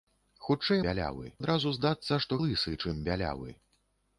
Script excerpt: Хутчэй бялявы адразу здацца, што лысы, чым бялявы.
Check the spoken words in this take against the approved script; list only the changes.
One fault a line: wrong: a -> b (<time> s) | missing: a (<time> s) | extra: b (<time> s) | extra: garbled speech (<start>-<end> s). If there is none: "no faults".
no faults